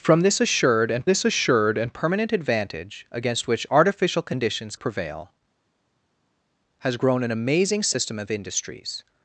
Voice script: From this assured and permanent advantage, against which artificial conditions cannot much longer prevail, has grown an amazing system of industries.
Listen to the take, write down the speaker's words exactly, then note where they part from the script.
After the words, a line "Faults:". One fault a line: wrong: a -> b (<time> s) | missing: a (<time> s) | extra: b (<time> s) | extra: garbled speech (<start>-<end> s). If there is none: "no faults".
From this assured and this assured and permanent advantage, against which artificial conditions prevail, has grown an amazing system of industries.
Faults:
extra: this assured and (1.0 s)
missing: cannot much longer (4.7 s)